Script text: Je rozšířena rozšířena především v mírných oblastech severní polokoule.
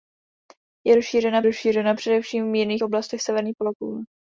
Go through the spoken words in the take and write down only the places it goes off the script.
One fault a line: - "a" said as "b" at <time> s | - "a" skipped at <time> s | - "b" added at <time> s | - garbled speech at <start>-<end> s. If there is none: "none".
none